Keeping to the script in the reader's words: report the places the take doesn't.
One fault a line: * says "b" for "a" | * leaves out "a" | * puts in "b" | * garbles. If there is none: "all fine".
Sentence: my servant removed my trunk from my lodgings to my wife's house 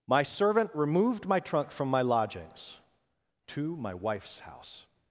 all fine